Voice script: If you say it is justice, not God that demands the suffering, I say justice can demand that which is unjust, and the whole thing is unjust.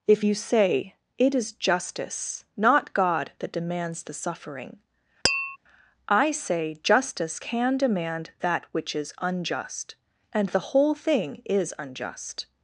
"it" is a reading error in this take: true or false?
false